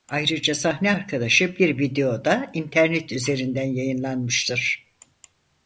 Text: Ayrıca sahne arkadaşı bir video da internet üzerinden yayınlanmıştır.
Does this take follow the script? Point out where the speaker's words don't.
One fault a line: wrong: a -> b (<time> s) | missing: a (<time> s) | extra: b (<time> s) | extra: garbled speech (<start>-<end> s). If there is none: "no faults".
no faults